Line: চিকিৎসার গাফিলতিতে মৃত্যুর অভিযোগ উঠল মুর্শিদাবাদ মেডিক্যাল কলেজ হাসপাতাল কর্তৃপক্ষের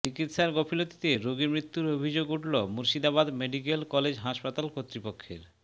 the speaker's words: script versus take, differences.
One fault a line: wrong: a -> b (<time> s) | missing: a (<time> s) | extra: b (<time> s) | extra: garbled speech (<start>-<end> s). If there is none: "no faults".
extra: রোগী (1.2 s)